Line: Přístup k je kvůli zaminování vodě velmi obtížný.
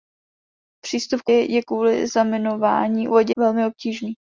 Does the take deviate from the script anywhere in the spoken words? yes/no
no